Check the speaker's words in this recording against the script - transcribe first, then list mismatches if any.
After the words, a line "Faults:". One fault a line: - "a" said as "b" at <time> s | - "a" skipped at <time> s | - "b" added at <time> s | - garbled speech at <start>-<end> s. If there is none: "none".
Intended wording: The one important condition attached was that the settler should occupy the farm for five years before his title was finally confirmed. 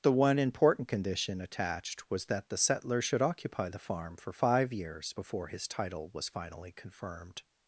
The one important condition attached was that the settler should occupy the farm for five years before his title was finally confirmed.
Faults:
none